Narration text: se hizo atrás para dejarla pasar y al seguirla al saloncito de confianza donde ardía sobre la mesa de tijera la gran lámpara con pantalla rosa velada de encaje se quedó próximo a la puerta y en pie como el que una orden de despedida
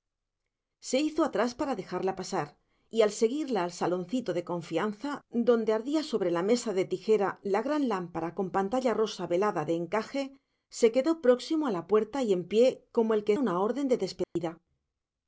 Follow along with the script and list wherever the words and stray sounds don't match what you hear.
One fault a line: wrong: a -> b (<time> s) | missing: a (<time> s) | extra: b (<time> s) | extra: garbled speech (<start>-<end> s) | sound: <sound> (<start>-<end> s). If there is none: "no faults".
sound: dropout (14.2-14.4 s)